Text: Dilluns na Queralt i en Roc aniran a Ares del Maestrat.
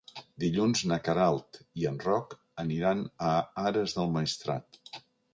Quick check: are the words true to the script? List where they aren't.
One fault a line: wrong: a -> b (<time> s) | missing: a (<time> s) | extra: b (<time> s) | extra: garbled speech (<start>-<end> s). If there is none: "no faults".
no faults